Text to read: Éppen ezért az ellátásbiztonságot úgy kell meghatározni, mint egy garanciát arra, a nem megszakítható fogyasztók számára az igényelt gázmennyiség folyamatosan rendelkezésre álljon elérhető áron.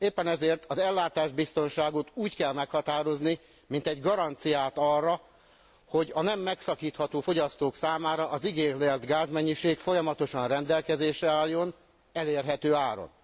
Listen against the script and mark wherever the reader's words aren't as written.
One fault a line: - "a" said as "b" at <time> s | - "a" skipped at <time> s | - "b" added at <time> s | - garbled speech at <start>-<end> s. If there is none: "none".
- "hogy" added at 5.9 s